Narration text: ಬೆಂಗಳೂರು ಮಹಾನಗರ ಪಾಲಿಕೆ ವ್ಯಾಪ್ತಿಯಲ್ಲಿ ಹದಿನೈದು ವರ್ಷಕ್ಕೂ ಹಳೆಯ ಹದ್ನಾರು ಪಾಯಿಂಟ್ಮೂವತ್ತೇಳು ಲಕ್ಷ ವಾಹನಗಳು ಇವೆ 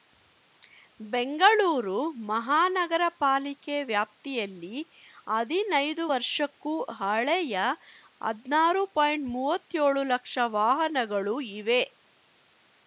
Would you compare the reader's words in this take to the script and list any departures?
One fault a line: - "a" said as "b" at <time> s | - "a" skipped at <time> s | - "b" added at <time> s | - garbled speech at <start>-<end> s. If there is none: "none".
none